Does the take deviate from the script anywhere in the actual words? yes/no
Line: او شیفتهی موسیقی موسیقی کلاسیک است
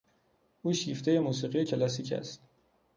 yes